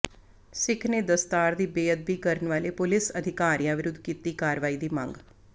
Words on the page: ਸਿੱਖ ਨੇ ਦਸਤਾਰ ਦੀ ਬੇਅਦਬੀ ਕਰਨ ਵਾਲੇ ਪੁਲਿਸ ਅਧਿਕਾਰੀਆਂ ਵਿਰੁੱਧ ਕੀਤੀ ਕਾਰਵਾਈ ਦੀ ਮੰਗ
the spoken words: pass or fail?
pass